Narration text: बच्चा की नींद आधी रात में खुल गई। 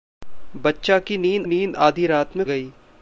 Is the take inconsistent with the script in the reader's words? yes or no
yes